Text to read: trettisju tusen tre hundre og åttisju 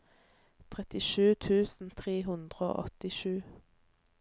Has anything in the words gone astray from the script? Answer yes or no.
no